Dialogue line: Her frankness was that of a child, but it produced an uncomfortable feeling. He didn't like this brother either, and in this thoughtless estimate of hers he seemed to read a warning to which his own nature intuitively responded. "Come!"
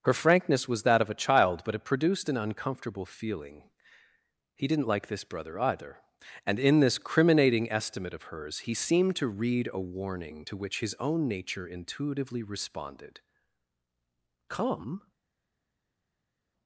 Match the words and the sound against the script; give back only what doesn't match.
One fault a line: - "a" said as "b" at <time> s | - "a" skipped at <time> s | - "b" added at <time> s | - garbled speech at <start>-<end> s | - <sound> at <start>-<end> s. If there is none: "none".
- "thoughtless" said as "criminating" at 7.0 s